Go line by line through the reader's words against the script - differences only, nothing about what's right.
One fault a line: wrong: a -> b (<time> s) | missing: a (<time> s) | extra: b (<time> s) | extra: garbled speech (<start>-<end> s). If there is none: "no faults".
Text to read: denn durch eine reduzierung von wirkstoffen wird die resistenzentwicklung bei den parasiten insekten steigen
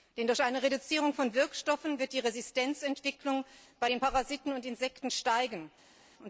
extra: und (4.5 s)